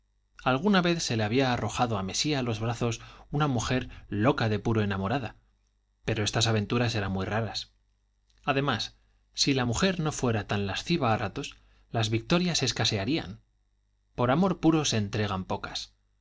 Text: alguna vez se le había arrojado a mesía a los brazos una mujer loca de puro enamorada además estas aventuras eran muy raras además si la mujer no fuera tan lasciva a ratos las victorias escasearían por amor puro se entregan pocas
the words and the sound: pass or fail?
fail